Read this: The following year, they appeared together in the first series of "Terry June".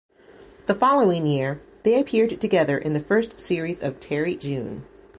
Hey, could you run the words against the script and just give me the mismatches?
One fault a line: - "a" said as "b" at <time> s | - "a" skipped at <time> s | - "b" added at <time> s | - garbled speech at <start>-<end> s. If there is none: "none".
none